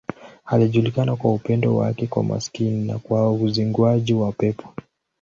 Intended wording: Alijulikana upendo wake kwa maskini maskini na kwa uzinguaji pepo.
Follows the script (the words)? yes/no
no